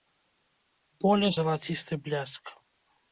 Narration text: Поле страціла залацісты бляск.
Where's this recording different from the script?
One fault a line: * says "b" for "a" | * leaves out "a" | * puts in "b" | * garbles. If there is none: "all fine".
* leaves out "страціла"